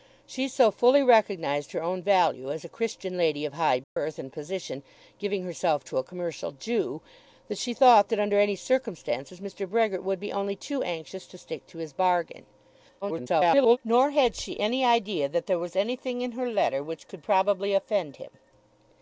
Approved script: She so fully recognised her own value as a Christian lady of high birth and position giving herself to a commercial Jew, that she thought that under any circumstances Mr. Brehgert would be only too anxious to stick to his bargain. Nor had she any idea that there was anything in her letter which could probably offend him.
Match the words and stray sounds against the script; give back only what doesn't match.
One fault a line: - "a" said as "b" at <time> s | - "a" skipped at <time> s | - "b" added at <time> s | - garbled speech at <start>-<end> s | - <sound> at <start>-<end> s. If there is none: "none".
- dropout at 3.8-4.0 s
- garbled speech at 13.0-13.8 s